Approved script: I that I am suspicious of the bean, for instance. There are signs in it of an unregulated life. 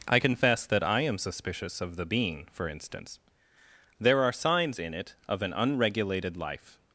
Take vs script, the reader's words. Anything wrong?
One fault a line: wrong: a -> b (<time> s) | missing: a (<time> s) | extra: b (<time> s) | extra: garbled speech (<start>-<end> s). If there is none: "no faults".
extra: confess (0.2 s)